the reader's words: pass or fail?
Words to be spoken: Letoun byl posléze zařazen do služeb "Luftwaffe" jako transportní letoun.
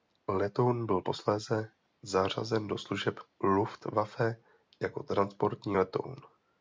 pass